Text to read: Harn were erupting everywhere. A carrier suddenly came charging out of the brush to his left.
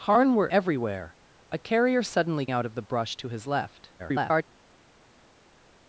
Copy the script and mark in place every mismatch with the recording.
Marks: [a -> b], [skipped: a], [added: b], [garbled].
Harn were [skipped: erupting] everywhere. A carrier suddenly [skipped: came charging] out of the brush to his left. [garbled]